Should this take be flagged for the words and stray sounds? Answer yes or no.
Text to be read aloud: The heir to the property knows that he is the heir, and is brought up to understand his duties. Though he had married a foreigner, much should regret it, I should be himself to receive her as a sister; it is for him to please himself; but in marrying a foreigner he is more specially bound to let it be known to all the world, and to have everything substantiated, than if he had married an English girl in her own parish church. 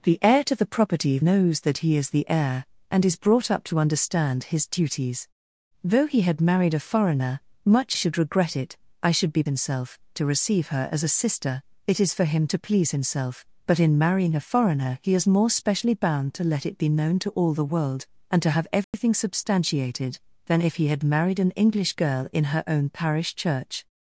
yes